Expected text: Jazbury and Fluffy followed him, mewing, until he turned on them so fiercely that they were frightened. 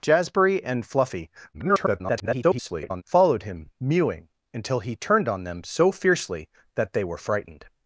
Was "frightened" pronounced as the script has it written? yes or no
yes